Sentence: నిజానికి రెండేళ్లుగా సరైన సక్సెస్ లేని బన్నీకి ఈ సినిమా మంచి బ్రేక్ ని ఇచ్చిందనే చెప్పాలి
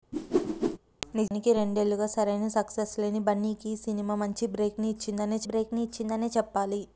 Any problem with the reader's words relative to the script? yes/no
yes